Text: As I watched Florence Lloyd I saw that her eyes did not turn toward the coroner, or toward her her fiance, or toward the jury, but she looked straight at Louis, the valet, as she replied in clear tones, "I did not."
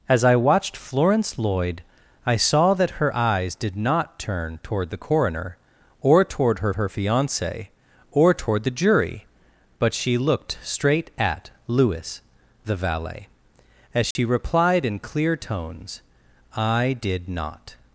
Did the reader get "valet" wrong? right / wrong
right